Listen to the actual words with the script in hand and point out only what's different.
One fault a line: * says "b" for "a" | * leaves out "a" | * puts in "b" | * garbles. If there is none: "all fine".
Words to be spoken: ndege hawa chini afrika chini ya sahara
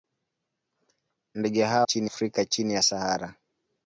all fine